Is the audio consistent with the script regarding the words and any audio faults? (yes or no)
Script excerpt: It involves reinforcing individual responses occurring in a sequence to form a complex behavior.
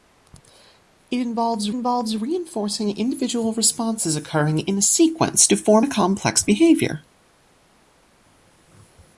no